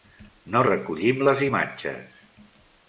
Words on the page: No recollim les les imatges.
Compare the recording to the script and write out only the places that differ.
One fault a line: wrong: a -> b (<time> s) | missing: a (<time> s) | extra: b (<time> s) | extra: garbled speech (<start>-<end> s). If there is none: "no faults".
missing: les (1.4 s)